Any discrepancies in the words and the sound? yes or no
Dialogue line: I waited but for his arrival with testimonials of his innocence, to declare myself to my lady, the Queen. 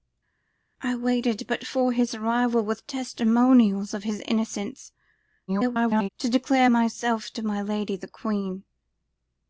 yes